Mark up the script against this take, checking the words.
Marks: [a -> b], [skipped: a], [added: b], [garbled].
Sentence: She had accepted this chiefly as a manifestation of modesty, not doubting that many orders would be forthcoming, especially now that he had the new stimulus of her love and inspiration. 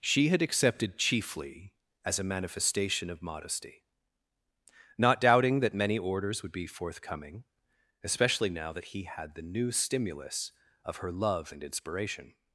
She had accepted [skipped: this] chiefly as a manifestation of modesty, not doubting that many orders would be forthcoming, especially now that he had the new stimulus of her love and inspiration.